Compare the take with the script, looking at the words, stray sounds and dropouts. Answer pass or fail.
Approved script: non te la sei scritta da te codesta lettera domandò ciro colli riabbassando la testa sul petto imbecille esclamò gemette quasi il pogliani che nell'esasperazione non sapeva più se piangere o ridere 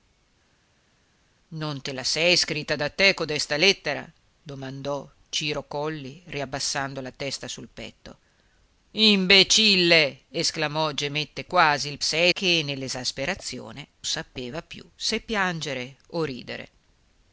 fail